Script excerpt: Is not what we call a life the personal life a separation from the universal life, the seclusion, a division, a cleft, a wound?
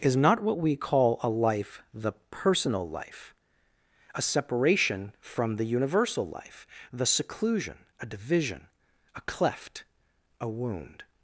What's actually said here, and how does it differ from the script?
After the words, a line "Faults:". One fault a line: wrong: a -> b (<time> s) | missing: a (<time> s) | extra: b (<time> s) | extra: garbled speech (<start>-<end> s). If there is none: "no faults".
Is not what we call a life the personal life a separation from the universal life, the seclusion, a division, a cleft, a wound?
Faults:
no faults